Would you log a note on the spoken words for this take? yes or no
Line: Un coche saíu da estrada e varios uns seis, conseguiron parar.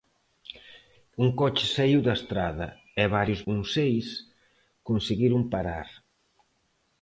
no